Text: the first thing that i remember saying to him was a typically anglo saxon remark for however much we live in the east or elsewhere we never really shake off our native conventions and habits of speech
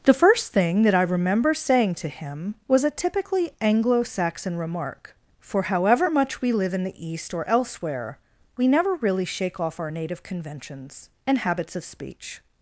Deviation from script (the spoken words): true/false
false